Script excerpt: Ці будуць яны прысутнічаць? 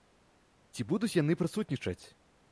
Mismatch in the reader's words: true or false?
false